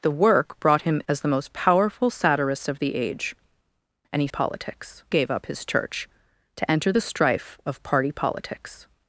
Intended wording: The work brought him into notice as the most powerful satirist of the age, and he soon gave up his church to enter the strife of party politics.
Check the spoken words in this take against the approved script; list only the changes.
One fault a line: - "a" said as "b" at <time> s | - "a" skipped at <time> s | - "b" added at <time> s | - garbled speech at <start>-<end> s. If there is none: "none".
- "into notice" skipped at 1.0 s
- "soon" said as "politics" at 4.3 s